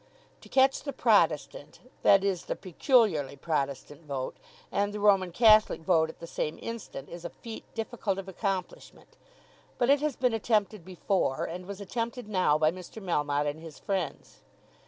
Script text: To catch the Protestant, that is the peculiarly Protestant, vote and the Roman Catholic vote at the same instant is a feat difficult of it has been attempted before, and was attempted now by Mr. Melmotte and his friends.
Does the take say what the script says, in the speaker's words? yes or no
no